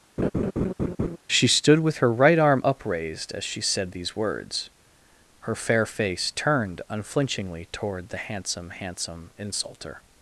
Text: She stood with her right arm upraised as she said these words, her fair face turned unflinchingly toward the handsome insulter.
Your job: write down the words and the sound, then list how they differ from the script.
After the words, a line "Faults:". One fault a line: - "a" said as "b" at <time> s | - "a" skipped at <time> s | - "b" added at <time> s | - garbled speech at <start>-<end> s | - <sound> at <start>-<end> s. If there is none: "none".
She stood with her right arm upraised as she said these words, her fair face turned unflinchingly toward the handsome handsome insulter.
Faults:
- laugh at 0.2-1.2 s
- "handsome" added at 8.8 s